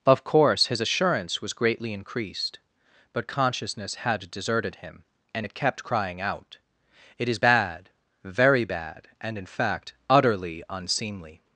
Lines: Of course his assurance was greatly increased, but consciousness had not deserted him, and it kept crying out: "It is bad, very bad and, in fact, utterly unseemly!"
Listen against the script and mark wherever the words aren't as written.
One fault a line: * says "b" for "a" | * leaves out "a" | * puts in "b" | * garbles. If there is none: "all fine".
* leaves out "not"